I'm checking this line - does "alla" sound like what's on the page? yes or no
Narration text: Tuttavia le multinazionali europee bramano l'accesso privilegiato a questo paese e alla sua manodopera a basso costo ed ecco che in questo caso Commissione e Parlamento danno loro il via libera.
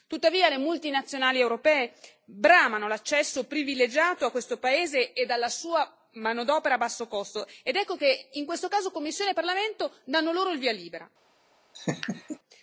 yes